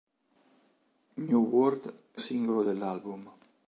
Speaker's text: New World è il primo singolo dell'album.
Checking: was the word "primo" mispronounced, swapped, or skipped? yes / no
yes